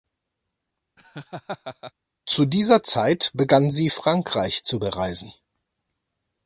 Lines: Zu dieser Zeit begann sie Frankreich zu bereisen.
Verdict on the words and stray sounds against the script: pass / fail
fail